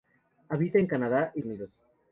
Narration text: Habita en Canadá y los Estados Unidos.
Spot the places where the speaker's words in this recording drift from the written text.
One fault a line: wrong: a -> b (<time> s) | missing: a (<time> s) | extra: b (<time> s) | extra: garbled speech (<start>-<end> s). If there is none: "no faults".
missing: los Estados (1.4 s)